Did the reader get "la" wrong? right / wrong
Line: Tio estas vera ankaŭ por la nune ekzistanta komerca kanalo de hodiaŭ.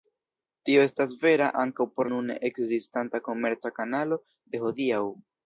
wrong